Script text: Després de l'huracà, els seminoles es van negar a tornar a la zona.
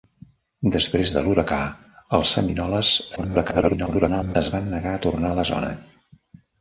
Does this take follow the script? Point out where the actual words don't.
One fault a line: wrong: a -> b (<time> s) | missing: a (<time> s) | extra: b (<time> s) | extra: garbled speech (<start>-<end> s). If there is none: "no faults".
extra: garbled speech (3.2-4.4 s)